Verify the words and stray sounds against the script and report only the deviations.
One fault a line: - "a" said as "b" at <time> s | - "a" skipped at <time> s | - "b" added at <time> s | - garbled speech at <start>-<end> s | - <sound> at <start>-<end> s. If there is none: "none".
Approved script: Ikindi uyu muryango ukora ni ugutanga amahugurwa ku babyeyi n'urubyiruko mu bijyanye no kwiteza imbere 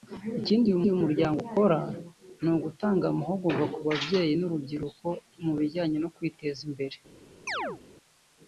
- "uyu" added at 0.8 s
- chirp at 7.5-7.8 s